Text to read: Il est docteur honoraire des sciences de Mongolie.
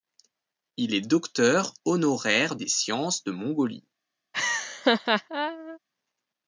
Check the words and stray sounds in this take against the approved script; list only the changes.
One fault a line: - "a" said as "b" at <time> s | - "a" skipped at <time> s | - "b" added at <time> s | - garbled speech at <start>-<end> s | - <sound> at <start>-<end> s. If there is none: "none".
- laugh at 4.3-5.8 s